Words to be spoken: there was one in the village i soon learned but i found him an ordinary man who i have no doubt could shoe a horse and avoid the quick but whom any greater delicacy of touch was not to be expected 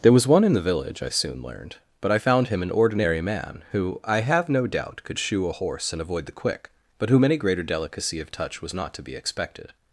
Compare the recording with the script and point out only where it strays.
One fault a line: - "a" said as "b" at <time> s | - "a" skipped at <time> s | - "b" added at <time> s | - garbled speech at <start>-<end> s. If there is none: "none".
none